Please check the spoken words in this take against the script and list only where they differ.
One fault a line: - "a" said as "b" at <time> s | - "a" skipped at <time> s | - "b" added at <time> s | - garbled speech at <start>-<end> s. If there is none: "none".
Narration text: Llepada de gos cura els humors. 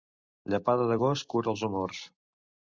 none